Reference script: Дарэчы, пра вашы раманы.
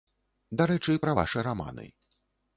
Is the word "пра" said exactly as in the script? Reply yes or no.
yes